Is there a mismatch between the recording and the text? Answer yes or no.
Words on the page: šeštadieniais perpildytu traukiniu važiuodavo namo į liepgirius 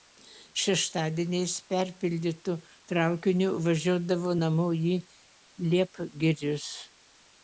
no